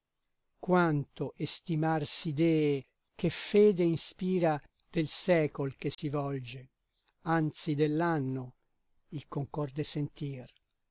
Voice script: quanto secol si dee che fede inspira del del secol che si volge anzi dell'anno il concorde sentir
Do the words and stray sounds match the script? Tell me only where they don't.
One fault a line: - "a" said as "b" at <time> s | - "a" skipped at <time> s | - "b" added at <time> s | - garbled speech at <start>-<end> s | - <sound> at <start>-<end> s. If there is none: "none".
- "secol" said as "estimar" at 1.4 s
- "del" skipped at 5.1 s
- dropout at 5.9-6.0 s